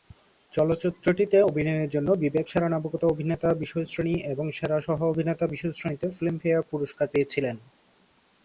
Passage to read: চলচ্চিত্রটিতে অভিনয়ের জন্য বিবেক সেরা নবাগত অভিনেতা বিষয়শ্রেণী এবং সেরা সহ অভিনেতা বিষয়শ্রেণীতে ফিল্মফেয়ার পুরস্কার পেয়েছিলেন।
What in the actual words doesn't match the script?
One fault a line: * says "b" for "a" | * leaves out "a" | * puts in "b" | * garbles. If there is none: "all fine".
all fine